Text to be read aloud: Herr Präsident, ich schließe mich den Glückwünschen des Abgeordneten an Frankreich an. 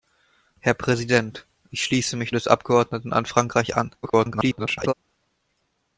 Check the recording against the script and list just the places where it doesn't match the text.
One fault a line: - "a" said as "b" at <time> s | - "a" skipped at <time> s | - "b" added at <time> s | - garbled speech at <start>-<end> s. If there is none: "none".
- "den Glückwünschen" skipped at 2.3 s
- garbled speech at 4.0-4.9 s